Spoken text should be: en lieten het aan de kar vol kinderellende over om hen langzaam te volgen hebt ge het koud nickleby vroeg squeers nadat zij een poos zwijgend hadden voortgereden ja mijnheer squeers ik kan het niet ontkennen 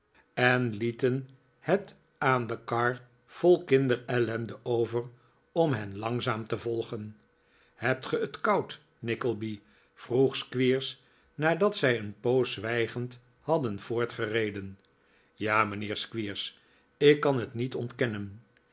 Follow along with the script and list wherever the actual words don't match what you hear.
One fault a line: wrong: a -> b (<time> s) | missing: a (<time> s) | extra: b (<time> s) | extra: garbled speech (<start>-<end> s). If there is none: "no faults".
no faults